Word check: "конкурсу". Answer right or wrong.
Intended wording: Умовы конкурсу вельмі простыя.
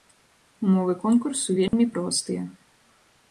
right